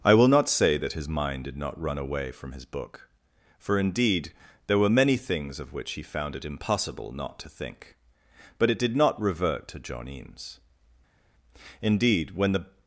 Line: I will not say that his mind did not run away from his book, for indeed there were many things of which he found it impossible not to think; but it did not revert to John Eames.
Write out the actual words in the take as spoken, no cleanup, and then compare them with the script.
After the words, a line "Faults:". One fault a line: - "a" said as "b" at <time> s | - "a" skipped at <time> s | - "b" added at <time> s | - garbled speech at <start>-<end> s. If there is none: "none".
I will not say that his mind did not run away from his book, for indeed there were many things of which he found it impossible not to think; but it did not revert to John Eames. Indeed, when the
Faults:
- "Indeed when the" added at 11.8 s